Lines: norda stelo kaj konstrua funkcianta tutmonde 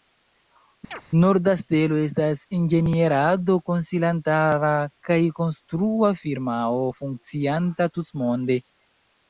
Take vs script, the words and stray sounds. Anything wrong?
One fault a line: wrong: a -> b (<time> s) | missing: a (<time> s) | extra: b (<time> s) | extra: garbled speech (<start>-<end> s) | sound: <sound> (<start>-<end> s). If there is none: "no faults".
sound: chirp (0.9-1.0 s)
extra: estas inĝenierado konsilantara (2.1 s)
extra: firmao (6.2 s)